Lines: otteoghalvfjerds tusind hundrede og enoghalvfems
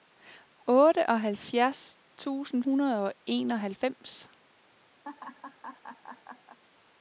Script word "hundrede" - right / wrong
right